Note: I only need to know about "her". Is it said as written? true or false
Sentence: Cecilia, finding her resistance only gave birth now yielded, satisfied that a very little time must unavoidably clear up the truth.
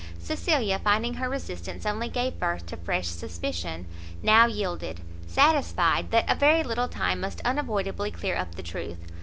true